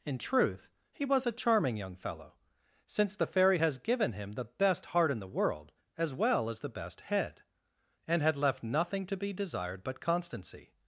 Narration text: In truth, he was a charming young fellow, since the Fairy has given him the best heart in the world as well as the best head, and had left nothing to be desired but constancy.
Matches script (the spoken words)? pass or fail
pass